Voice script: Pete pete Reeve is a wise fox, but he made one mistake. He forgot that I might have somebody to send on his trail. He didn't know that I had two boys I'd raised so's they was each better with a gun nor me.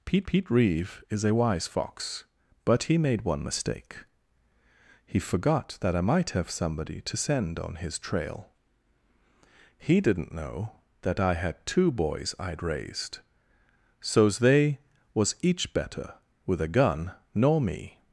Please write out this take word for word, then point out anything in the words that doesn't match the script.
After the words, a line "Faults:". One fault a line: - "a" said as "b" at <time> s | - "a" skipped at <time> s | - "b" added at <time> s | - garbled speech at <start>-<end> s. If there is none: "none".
Pete pete Reeve is a wise fox, but he made one mistake. He forgot that I might have somebody to send on his trail. He didn't know that I had two boys I'd raised so's they was each better with a gun nor me.
Faults:
none